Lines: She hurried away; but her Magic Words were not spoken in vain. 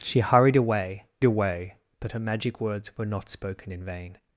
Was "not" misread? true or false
false